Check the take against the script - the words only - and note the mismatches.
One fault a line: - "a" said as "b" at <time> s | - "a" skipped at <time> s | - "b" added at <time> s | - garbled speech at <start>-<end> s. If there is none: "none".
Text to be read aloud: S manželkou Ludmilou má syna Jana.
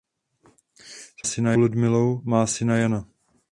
- "manželkou" said as "syna" at 1.2 s